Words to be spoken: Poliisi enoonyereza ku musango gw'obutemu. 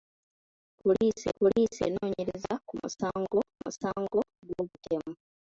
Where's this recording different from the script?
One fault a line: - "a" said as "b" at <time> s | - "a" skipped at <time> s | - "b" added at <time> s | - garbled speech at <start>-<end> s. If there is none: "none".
- "poliisi" added at 1.4 s
- "musango" added at 3.6 s